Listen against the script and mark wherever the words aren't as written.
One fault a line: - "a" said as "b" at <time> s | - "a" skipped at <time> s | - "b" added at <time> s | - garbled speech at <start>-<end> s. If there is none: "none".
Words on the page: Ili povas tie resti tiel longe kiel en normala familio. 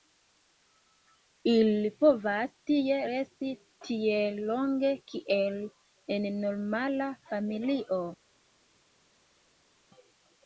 none